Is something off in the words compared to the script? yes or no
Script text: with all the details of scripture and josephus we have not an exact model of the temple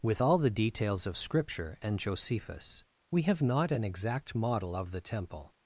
no